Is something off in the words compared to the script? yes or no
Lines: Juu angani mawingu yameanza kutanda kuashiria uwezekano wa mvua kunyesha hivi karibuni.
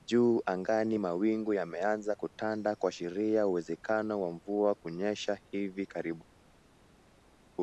no